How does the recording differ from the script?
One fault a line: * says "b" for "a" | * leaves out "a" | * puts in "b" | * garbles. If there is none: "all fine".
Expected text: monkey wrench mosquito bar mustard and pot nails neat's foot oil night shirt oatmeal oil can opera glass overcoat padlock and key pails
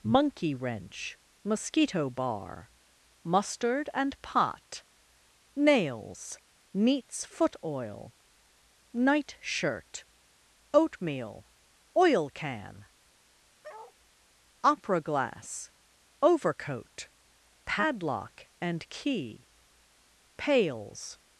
all fine